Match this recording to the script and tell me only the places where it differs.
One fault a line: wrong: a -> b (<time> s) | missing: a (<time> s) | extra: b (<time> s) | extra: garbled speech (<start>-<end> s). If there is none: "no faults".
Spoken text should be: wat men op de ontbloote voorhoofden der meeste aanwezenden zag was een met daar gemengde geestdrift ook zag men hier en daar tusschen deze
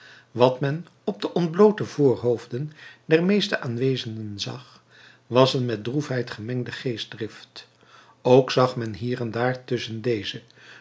wrong: daar -> droefheid (5.8 s)